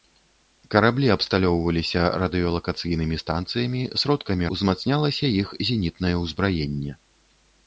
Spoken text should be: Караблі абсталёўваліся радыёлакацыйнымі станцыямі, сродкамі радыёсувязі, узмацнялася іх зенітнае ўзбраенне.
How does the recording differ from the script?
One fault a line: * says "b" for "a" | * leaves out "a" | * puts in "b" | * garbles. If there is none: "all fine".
* leaves out "радыёсувязі"